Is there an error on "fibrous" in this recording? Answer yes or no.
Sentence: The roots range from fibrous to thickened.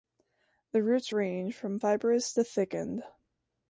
no